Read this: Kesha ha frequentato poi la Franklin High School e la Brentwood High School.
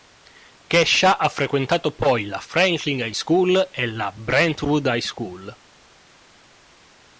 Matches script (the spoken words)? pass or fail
pass